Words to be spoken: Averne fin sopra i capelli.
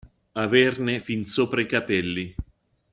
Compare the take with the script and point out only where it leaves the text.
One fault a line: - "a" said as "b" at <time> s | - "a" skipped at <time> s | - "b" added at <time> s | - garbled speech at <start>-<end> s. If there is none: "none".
none